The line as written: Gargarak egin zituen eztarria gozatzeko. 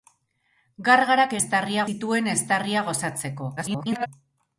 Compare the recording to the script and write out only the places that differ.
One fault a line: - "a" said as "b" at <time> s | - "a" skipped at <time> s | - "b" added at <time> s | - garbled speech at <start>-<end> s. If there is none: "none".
- "egin" said as "eztarria" at 1.4 s
- garbled speech at 3.6-4.1 s